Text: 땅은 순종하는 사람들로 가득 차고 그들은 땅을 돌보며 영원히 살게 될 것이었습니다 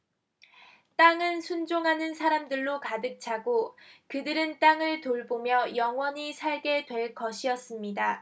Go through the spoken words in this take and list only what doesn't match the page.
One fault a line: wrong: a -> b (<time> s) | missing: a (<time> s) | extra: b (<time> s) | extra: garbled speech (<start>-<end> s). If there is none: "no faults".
no faults